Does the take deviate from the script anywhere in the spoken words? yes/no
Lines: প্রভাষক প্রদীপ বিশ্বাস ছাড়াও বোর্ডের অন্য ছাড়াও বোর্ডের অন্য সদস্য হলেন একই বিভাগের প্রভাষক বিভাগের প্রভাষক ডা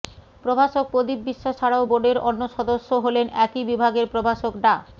yes